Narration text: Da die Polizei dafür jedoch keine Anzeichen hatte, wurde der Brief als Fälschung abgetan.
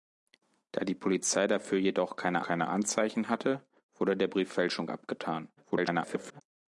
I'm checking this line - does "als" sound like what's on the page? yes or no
no